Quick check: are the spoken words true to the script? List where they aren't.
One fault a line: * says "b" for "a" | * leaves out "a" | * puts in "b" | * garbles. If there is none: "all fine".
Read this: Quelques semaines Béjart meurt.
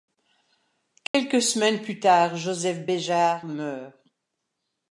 * puts in "plus tard Joseph"